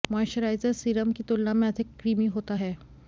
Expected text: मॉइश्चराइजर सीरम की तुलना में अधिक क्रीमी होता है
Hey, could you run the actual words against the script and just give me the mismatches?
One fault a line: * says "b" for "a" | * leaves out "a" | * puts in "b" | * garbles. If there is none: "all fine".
all fine